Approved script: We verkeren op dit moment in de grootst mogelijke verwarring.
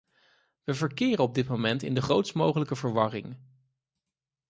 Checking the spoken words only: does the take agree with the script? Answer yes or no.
yes